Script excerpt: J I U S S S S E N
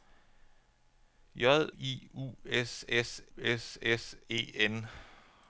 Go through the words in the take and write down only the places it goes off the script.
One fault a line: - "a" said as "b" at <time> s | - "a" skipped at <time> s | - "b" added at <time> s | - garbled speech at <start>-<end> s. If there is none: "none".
none